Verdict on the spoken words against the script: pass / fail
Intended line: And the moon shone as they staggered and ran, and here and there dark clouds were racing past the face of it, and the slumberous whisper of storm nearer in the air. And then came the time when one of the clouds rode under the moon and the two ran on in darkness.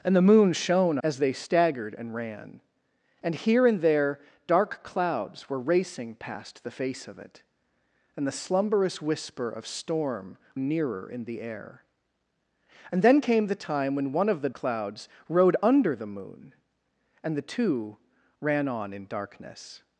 pass